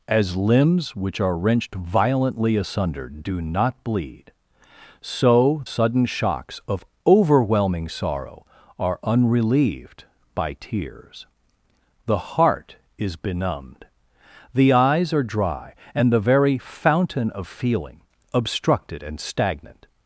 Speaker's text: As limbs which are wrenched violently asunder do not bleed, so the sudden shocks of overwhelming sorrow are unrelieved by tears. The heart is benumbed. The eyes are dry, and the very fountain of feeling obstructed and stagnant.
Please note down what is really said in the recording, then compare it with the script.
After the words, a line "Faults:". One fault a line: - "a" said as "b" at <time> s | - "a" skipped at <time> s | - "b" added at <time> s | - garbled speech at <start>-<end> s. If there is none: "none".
As limbs which are wrenched violently asunder do not bleed, so sudden shocks of overwhelming sorrow are unrelieved by tears. The heart is benumbed. The eyes are dry, and the very fountain of feeling obstructed and stagnant.
Faults:
- "the" skipped at 5.6 s